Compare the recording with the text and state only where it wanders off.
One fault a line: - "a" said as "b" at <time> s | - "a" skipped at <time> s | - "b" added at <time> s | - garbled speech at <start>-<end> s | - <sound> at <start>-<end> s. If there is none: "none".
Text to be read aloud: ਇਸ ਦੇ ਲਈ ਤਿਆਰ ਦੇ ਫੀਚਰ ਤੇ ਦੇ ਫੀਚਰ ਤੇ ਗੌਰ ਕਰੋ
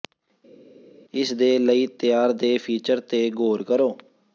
- "ਦੇ ਫੀਚਰ ਤੇ" skipped at 3.3 s